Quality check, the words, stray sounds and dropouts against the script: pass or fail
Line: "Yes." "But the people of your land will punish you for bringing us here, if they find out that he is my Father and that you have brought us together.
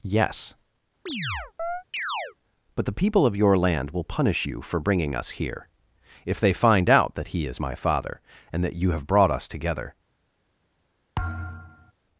fail